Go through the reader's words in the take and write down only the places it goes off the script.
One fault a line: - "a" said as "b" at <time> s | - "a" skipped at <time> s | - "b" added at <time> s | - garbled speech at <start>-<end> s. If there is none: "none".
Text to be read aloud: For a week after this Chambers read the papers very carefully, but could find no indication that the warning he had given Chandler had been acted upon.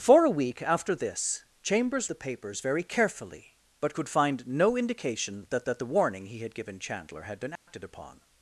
- "read" skipped at 2.1 s
- "that" added at 5.6 s